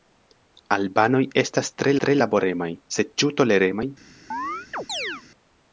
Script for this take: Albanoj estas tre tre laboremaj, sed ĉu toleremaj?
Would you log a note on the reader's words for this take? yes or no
no